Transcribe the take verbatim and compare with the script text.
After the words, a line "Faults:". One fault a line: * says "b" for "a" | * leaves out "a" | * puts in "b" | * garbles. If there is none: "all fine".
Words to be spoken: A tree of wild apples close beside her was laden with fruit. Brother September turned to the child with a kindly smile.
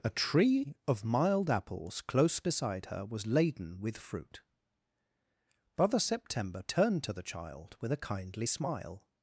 A tree of mild apples close beside her was laden with fruit. Brother September turned to the child with a kindly smile.
Faults:
* says "mild" for "wild"